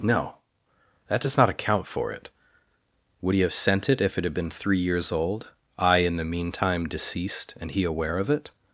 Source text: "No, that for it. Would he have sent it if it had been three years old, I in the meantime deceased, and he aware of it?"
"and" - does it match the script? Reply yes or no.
yes